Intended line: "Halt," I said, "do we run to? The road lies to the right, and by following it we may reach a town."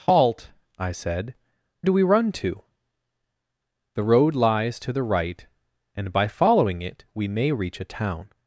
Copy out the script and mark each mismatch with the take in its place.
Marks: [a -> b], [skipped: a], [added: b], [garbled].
"Halt," I said, "do we run to? The road lies to the right, and by following it we may reach a town."